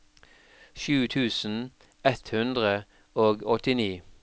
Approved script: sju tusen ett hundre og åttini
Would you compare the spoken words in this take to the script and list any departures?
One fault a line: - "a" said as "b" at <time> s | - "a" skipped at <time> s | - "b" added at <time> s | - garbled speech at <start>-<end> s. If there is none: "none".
none